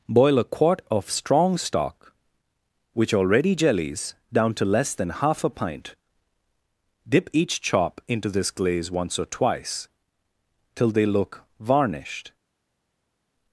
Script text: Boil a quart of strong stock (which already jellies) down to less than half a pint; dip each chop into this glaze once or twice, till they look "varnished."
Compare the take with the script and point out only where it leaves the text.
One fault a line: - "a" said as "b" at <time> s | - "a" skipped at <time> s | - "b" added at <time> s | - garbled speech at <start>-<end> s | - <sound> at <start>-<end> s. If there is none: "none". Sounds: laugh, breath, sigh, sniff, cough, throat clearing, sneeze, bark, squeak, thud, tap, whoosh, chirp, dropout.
none